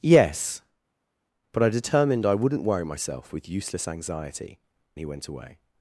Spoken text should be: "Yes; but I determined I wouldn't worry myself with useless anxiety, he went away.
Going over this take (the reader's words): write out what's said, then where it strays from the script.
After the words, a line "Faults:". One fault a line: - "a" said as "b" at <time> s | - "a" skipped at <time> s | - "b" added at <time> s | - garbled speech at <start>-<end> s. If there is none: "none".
"Yes; but I determined I wouldn't worry myself with useless anxiety, he went away.
Faults:
none